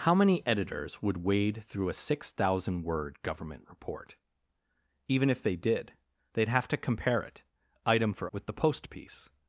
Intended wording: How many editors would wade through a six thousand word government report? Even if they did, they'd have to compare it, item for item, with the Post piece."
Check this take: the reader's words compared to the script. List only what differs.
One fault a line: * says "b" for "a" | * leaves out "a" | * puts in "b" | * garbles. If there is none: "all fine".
* leaves out "item"